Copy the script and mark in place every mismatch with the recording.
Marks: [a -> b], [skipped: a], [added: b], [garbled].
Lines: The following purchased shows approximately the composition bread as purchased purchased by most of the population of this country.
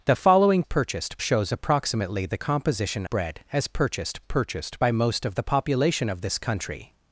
The following purchased shows approximately the composition bread as purchased purchased by most of the population of this country.